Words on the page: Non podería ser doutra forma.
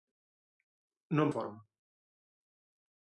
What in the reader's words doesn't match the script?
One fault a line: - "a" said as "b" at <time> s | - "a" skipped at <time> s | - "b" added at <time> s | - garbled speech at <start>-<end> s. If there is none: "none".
- "podería ser doutra" skipped at 1.3 s